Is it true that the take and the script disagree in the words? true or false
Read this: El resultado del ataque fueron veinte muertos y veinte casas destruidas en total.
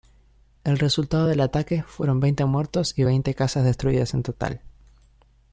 false